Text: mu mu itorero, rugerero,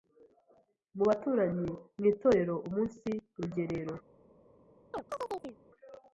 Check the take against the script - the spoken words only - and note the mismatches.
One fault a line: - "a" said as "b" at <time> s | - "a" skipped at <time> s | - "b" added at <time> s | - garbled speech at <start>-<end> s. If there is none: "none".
- "baturanyi" added at 1.1 s
- "umunsi" added at 2.7 s